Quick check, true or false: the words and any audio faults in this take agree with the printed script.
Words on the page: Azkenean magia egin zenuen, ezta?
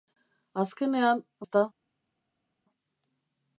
false